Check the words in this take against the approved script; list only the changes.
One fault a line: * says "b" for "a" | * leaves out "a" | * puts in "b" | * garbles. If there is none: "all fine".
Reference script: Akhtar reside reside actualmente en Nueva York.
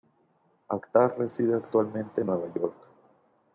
* leaves out "reside"